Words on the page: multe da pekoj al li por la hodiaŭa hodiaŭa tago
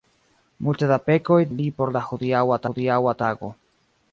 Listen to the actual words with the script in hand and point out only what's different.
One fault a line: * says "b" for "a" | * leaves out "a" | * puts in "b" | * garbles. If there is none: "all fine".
all fine